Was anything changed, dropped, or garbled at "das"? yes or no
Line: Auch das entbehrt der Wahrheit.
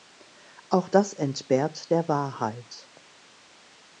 no